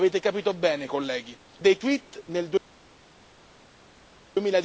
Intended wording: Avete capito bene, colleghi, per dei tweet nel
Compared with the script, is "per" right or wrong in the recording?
wrong